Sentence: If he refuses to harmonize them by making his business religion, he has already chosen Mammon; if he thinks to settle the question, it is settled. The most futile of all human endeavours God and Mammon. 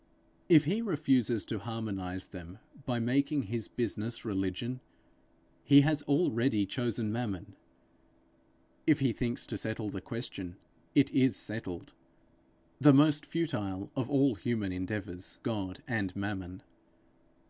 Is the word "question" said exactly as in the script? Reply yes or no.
yes